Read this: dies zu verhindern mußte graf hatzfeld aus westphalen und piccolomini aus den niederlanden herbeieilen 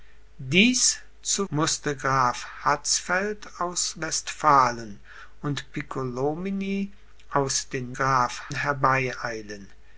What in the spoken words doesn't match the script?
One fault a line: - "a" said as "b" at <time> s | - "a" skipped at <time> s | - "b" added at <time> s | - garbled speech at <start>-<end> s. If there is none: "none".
- "verhindern" skipped at 1.4 s
- "niederlanden" said as "graf" at 7.9 s